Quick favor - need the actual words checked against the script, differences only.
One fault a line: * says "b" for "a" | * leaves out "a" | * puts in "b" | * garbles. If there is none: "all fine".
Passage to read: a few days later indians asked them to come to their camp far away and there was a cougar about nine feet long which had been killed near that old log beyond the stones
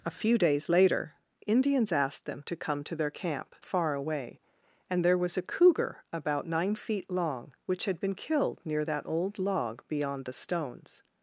all fine